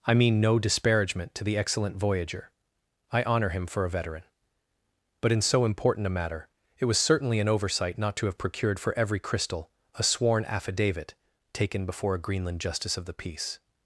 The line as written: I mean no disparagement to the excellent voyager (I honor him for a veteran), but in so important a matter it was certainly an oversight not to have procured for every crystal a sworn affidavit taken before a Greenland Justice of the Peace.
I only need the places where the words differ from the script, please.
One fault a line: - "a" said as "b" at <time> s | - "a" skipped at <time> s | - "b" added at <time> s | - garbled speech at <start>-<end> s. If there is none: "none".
none